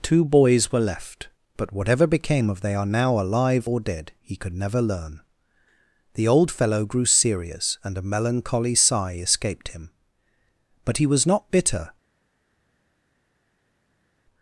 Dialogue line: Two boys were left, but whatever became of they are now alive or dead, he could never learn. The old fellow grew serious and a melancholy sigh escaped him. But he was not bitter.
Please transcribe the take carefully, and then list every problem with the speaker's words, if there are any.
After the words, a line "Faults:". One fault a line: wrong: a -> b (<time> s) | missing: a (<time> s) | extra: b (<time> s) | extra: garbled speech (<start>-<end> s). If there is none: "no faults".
Two boys were left, but whatever became of they are now alive or dead, he could never learn. The old fellow grew serious and a melancholy sigh escaped him. But he was not bitter.
Faults:
no faults